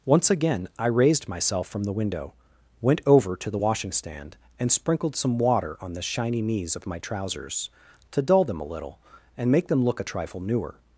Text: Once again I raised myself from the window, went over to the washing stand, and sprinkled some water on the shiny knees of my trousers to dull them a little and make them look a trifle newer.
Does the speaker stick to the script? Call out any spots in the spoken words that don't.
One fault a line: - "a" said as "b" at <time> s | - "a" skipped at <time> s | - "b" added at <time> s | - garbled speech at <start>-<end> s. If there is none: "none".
none